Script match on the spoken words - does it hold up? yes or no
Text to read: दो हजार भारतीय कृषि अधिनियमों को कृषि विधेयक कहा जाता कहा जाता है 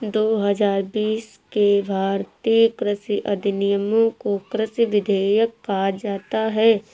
no